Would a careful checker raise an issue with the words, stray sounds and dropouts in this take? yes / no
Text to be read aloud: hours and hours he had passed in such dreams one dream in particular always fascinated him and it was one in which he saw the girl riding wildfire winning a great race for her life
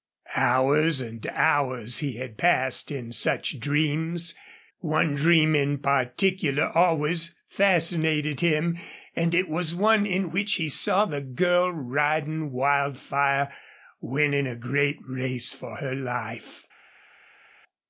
no